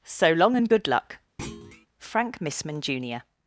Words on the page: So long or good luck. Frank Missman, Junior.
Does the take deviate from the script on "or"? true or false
true